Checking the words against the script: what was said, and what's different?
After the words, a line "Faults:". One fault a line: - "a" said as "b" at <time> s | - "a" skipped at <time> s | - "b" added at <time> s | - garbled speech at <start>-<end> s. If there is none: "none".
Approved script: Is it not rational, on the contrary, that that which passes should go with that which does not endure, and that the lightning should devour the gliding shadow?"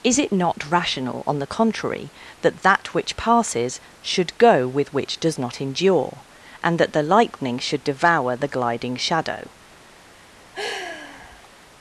Is it not rational, on the contrary, that that which passes should go with which does not endure, and that the lightning should devour the gliding shadow?"
Faults:
- "that" skipped at 4.9 s